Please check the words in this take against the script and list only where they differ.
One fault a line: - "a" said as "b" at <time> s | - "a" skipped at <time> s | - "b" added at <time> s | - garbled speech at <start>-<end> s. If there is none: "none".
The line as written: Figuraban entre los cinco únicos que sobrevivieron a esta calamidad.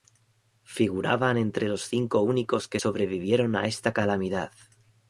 none